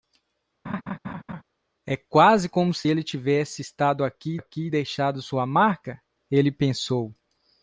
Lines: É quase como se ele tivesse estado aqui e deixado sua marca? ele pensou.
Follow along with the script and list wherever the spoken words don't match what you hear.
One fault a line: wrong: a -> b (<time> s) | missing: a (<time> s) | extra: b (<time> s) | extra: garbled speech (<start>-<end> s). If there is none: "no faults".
extra: aqui (4.3 s)